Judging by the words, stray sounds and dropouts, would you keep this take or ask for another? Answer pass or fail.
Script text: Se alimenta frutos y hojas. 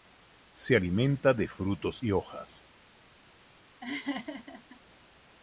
fail